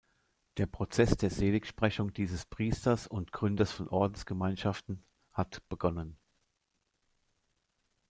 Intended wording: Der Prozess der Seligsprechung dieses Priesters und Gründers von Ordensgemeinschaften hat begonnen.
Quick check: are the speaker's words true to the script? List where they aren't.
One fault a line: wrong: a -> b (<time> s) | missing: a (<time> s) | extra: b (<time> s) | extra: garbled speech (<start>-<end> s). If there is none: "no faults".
no faults